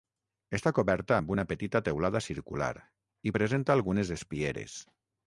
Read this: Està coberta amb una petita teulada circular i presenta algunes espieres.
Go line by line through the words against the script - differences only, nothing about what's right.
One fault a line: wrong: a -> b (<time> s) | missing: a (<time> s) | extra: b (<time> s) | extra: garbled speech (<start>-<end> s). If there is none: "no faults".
no faults